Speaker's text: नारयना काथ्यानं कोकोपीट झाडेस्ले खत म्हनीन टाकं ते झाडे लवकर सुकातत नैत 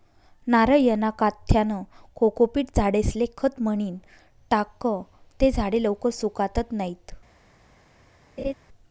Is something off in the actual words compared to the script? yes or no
no